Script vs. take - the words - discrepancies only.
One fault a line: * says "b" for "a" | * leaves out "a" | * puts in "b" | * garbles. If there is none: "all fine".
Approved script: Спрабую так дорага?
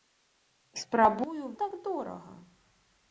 all fine